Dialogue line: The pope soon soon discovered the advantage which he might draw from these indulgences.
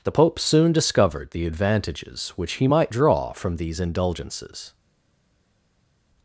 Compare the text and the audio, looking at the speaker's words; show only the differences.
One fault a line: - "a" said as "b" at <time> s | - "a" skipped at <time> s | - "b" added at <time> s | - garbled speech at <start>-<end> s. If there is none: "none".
- "soon" skipped at 0.7 s
- "advantage" said as "advantages" at 1.5 s